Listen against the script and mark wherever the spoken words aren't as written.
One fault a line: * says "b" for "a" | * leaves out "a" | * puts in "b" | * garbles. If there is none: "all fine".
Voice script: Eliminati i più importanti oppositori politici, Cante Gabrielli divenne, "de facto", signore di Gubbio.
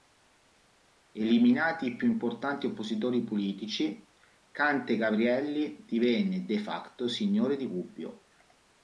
all fine